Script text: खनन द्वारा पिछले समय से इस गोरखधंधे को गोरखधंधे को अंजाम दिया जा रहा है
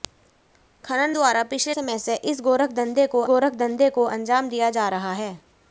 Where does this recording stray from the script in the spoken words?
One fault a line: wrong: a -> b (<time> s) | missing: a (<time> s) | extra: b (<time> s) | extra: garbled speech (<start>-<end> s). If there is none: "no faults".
no faults